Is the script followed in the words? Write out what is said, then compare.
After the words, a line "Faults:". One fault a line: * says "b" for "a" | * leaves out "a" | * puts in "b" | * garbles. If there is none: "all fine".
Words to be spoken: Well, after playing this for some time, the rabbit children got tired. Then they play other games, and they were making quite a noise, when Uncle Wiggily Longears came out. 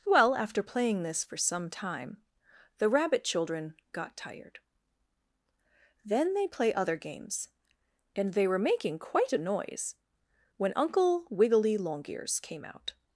Well, after playing this for some time, the rabbit children got tired. Then they play other games, and they were making quite a noise, when Uncle Wiggily Longears came out.
Faults:
all fine